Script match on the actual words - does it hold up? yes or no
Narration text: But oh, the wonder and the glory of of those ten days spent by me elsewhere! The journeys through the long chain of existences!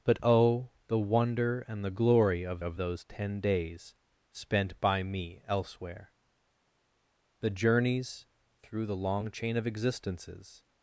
yes